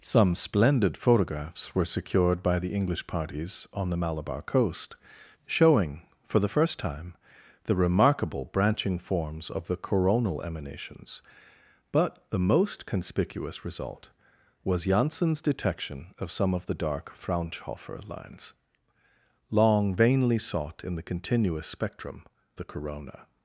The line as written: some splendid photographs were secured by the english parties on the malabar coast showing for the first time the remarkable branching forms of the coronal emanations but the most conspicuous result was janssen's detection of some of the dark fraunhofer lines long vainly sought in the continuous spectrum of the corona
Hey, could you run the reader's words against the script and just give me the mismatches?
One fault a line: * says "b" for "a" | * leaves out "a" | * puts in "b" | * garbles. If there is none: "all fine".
* leaves out "of"